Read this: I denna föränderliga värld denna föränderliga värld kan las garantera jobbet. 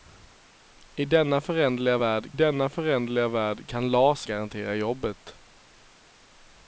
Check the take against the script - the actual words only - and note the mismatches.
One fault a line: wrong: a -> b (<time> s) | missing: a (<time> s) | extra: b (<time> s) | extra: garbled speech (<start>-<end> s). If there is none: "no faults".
no faults